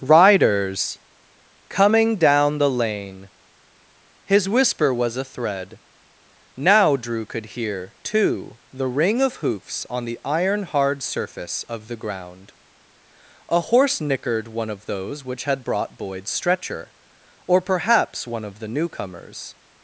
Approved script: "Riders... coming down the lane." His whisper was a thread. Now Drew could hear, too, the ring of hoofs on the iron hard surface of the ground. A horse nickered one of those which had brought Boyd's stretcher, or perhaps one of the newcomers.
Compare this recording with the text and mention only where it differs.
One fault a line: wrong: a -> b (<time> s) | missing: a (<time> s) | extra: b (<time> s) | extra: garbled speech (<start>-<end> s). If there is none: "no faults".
no faults